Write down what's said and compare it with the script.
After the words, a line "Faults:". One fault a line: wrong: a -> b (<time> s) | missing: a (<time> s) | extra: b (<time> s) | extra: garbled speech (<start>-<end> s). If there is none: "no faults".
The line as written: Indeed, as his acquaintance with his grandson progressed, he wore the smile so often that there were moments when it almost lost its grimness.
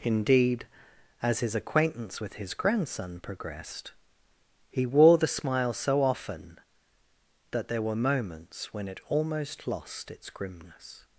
Indeed, as his acquaintance with his grandson progressed, he wore the smile so often that there were moments when it almost lost its grimness.
Faults:
no faults